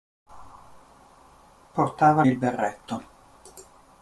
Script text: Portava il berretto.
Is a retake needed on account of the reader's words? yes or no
no